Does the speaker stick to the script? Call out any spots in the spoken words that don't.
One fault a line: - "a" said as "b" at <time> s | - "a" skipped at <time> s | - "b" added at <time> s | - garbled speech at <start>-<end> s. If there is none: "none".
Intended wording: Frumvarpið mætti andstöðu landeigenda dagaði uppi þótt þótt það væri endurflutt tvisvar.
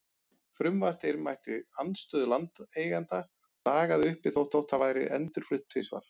none